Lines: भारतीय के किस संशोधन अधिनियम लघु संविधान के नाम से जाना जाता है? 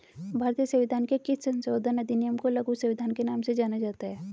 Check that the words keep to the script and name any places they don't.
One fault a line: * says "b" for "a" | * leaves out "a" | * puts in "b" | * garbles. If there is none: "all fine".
* puts in "संविधान"
* puts in "को"